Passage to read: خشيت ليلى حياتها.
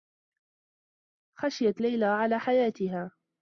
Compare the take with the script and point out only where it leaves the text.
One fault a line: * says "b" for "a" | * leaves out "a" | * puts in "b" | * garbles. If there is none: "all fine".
* puts in "على"